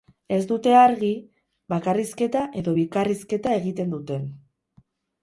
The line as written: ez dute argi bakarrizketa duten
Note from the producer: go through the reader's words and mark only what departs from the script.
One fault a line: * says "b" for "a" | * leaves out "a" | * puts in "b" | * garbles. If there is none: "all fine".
* puts in "edo bikarrizketa egiten"